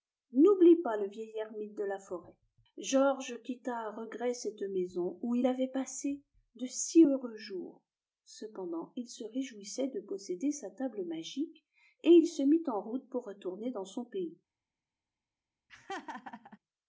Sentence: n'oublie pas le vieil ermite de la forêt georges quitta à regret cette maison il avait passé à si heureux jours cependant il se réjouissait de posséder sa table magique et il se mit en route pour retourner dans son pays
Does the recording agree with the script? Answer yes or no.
no